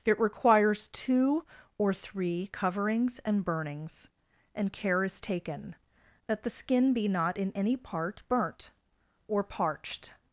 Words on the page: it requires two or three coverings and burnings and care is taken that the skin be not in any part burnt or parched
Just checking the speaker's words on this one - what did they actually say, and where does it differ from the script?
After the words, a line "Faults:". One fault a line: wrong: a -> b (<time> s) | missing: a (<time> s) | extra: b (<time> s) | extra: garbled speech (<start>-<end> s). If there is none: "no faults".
it requires two or three coverings and burnings and care is taken that the skin be not in any part burnt or parched
Faults:
no faults